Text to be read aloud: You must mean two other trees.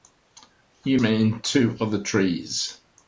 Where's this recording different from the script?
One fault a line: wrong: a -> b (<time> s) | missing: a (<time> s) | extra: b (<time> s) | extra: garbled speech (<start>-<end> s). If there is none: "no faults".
missing: must (1.0 s)